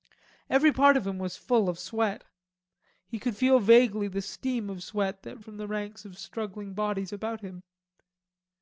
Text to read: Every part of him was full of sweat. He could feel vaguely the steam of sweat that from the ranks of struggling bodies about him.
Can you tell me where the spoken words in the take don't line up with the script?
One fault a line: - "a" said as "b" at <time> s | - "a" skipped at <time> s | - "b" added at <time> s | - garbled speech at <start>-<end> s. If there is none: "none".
none